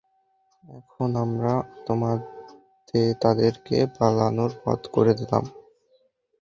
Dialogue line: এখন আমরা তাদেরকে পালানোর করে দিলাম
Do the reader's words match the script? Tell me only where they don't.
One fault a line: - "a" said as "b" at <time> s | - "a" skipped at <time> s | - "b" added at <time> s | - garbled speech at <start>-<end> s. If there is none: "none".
- "পথ" added at 4.6 s